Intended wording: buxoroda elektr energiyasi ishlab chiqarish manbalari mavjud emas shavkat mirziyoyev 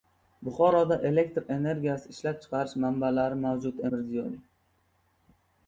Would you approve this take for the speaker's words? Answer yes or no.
no